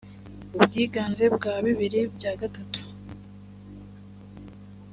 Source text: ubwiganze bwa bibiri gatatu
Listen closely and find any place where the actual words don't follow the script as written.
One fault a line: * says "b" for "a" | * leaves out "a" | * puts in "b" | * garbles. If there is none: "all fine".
* puts in "bya"